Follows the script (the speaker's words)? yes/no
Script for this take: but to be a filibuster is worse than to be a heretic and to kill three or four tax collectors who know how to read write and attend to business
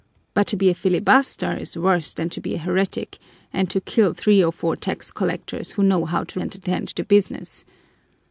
no